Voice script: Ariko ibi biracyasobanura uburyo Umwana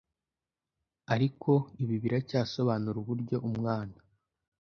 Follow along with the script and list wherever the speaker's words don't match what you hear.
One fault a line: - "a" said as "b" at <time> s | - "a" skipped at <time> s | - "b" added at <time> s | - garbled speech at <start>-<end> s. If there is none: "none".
none